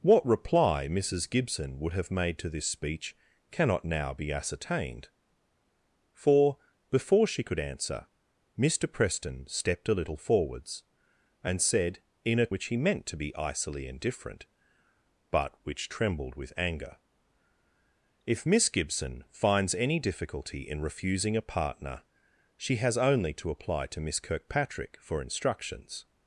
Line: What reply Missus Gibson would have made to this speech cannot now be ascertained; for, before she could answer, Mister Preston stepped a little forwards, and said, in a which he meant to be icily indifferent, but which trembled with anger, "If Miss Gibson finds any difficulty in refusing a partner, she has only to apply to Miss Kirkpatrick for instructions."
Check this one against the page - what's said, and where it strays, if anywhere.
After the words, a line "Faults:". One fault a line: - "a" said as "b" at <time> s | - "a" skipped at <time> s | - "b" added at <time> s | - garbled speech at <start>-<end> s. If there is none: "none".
What reply Missus Gibson would have made to this speech cannot now be ascertained; for, before she could answer, Mister Preston stepped a little forwards, and said, in a which he meant to be icily indifferent, but which trembled with anger, "If Miss Gibson finds any difficulty in refusing a partner, she has only to apply to Miss Kirkpatrick for instructions."
Faults:
none